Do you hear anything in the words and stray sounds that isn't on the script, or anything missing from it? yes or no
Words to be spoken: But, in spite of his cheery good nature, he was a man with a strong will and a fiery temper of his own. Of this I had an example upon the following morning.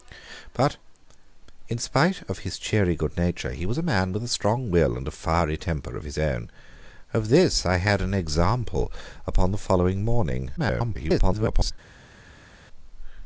yes